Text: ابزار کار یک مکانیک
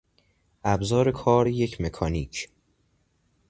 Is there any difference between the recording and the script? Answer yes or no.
no